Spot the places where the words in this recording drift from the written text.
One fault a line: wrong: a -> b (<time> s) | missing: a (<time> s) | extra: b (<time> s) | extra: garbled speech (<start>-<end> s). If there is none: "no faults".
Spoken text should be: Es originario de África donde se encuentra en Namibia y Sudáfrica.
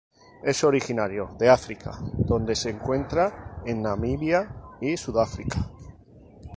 no faults